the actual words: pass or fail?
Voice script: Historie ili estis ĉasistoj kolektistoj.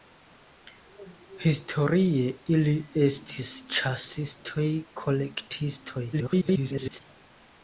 fail